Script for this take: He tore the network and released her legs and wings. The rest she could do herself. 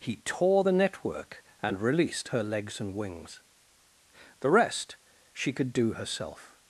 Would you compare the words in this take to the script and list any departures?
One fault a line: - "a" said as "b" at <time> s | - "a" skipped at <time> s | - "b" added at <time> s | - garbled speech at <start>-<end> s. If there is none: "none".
none